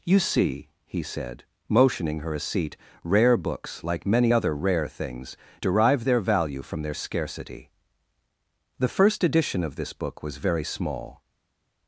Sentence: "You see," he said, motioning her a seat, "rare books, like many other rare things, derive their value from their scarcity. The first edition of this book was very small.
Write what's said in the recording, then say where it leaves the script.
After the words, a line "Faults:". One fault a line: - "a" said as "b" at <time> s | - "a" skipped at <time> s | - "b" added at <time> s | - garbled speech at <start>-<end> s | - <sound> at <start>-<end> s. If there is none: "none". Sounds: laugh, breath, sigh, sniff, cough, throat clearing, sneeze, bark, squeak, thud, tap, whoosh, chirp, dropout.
"You see," he said, motioning her a seat, "rare books, like many other rare things, derive their value from their scarcity. The first edition of this book was very small.
Faults:
none